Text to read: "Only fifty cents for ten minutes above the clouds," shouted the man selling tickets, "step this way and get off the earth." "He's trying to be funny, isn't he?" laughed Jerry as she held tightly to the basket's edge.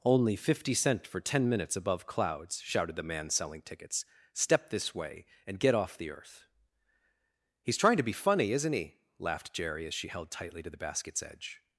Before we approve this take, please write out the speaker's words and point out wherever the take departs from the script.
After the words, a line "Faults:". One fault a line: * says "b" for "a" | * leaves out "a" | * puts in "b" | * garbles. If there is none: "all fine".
"Only fifty cent for ten minutes above clouds," shouted the man selling tickets, "step this way and get off the earth." "He's trying to be funny, isn't he?" laughed Jerry as she held tightly to the basket's edge.
Faults:
* says "cent" for "cents"
* leaves out "the"